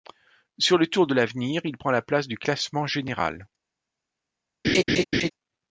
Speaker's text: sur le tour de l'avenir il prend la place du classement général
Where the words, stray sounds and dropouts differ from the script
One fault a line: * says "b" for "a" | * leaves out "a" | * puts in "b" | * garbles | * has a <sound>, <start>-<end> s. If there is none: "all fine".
* has a laugh, 4.6-5.3 s